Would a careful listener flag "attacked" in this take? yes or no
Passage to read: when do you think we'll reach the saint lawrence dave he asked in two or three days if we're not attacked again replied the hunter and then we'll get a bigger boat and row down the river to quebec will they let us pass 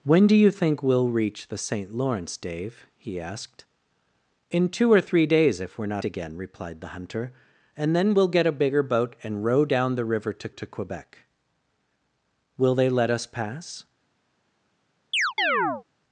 yes